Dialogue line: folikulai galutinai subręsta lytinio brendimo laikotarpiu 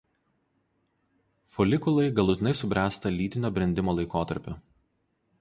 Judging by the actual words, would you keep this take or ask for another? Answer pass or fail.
pass